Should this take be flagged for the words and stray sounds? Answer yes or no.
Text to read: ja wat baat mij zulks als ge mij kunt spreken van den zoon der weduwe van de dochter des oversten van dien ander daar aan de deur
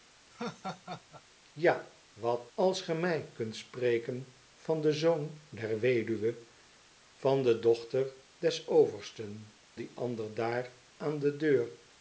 yes